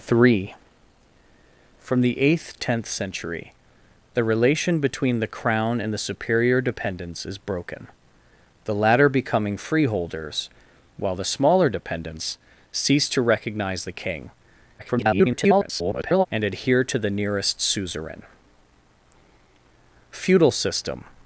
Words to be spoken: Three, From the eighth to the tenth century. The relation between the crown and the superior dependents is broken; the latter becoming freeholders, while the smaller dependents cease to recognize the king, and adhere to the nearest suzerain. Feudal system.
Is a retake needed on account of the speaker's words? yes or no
yes